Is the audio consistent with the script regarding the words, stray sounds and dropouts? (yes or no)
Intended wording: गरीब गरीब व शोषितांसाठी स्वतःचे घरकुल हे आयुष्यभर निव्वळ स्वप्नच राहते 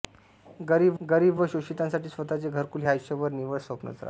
yes